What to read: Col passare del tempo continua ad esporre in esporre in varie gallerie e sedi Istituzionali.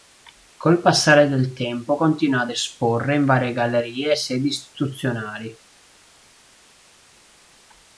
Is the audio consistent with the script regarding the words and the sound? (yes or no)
no